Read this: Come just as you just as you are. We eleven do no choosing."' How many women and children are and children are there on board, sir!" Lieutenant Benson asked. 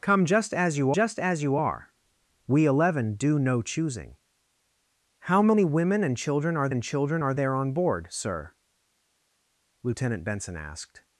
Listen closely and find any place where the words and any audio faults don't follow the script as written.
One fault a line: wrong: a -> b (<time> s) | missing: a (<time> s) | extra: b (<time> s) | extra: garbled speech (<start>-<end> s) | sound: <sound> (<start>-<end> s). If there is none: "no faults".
no faults